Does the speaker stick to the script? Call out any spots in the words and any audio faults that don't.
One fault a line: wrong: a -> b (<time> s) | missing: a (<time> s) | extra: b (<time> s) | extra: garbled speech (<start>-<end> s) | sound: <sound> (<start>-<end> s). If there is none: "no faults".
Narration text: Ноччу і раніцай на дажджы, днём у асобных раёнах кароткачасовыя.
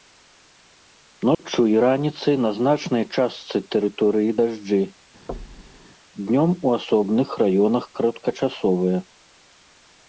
sound: dropout (1.3-1.4 s)
extra: значнай частцы тэрыторыі (2.6 s)
sound: thud (5.3-5.9 s)